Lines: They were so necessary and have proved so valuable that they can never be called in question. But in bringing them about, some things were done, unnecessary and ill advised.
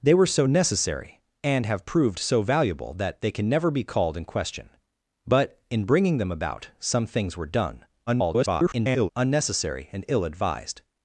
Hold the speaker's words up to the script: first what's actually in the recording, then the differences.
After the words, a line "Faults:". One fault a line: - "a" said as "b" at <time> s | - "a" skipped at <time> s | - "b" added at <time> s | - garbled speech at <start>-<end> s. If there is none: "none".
They were so necessary and have proved so valuable that they can never be called in question. But in bringing them about, some things were done, [garbled] unnecessary and ill advised.
Faults:
- garbled speech at 8.1-9.1 s